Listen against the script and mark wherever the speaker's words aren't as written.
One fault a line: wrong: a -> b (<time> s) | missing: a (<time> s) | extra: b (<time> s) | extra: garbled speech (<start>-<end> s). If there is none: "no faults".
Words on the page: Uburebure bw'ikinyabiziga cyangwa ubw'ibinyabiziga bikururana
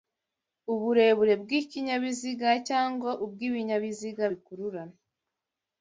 no faults